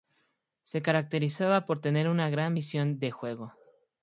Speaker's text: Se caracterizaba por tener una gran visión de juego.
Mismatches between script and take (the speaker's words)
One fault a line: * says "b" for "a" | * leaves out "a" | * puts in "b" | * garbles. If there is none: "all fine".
all fine